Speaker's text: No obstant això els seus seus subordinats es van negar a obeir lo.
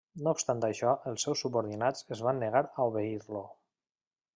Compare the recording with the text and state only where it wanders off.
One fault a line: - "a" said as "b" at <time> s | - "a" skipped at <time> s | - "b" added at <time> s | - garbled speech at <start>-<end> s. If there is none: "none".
- "seus" skipped at 1.4 s